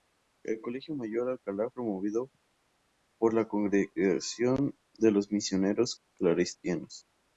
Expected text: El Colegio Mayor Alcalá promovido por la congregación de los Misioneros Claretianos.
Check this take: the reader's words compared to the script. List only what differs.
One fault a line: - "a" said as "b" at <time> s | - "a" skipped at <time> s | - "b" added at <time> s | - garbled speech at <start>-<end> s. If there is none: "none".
none